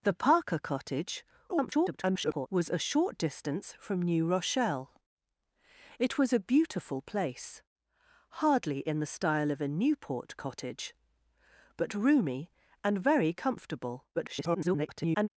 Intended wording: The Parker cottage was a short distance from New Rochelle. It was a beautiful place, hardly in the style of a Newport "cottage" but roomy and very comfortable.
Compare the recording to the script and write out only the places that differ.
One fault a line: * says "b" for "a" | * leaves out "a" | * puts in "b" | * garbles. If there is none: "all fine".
* garbles
* garbles